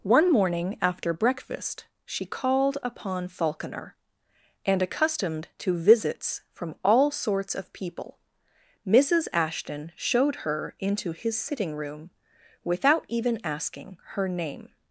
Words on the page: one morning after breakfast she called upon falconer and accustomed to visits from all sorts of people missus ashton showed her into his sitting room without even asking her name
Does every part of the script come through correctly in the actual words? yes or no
yes